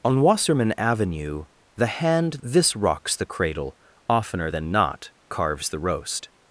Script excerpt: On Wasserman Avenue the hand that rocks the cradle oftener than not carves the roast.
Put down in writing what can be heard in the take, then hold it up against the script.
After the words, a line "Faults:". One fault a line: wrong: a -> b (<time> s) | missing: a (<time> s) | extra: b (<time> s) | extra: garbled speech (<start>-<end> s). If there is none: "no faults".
On Wasserman Avenue the hand this rocks the cradle oftener than not carves the roast.
Faults:
wrong: that -> this (2.4 s)